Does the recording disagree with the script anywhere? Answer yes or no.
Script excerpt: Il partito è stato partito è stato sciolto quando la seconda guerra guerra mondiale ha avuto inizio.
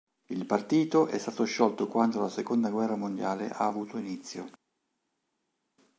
yes